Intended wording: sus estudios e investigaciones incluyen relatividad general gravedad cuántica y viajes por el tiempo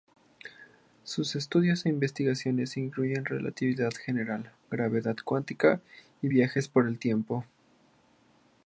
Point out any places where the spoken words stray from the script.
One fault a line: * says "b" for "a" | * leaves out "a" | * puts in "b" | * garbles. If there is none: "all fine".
all fine